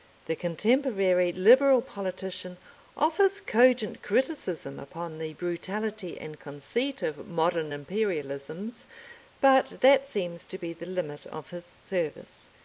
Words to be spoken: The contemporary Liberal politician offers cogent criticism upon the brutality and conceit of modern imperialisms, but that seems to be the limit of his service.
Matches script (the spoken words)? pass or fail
pass